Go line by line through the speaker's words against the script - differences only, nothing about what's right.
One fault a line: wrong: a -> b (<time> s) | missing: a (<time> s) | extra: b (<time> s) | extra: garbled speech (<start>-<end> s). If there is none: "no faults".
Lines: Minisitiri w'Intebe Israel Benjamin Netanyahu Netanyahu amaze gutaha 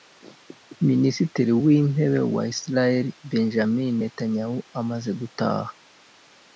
extra: wa (2.3 s)
missing: Netanyahu (4.6 s)